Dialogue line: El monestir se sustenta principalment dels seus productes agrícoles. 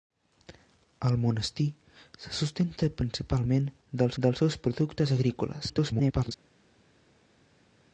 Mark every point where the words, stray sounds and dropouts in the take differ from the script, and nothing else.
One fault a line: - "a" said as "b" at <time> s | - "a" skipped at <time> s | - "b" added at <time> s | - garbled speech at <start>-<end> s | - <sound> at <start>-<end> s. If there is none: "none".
- "dels" added at 4.2 s
- garbled speech at 5.7-6.3 s